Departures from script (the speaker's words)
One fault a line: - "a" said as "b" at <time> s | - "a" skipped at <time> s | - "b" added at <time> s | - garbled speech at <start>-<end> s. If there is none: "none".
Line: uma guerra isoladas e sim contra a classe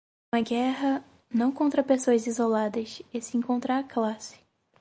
- "não contra pessoas" added at 1.3 s